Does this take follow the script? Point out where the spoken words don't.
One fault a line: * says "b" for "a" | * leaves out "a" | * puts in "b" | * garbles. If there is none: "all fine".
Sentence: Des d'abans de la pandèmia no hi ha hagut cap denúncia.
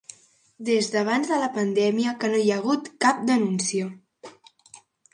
* puts in "que"